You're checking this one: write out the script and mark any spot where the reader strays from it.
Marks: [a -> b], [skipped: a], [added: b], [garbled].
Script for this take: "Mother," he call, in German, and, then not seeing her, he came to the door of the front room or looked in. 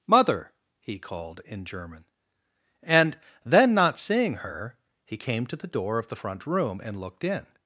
"Mother," he [call, -> called] in German, and, then not seeing her, he came to the door of the front room [or -> and] looked in.